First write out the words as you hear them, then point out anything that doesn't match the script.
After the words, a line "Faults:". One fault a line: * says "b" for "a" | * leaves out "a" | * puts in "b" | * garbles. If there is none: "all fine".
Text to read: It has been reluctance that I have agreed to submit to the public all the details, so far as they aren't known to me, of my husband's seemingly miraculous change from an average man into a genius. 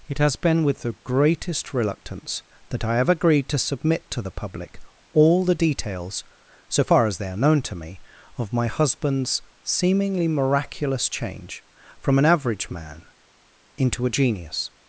It has been with the greatest reluctance that I have agreed to submit to the public all the details, so far as they are known to me, of my husband's seemingly miraculous change from an average man into a genius.
Faults:
* puts in "with the greatest"
* says "are" for "aren't"